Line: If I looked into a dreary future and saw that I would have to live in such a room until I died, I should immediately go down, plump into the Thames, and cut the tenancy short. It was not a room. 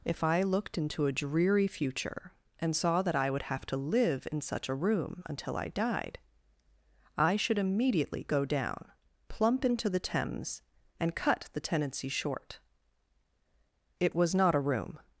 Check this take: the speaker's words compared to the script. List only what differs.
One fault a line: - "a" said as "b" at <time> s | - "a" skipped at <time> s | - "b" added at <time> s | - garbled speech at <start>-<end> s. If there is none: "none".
none